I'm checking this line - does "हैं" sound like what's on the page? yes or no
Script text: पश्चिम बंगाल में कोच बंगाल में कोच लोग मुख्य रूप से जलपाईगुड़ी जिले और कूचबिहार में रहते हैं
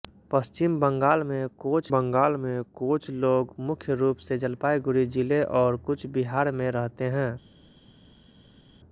yes